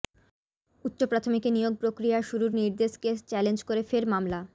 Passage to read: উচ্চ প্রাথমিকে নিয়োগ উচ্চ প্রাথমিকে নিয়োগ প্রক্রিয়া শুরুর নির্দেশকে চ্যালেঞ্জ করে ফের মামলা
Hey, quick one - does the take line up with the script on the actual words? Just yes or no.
no